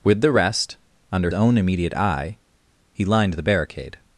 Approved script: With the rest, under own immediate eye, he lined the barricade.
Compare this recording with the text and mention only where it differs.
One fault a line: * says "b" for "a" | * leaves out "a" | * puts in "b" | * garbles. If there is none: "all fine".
all fine